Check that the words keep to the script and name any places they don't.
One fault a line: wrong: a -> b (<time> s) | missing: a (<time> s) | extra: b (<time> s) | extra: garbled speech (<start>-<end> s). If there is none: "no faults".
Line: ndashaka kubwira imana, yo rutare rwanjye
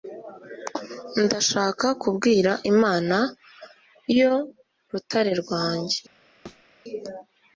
no faults